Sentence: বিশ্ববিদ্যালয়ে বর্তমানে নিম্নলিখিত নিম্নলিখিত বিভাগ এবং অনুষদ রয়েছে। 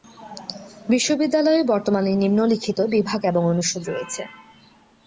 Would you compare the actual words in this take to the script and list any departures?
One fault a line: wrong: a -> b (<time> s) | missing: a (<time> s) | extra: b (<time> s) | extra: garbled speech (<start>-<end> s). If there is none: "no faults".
missing: নিম্নলিখিত (2.8 s)